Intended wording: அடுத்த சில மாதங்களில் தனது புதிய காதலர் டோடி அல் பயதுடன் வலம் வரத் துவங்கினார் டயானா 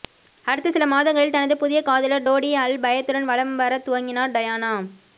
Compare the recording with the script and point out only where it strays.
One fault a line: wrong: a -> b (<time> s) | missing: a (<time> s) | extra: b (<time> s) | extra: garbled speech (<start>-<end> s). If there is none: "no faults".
no faults